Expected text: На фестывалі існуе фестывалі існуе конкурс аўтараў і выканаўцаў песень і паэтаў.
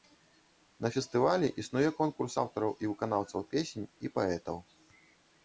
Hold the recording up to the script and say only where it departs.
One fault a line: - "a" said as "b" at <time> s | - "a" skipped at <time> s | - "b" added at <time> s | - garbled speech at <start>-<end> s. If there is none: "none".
- "фестывалі існуе" skipped at 1.9 s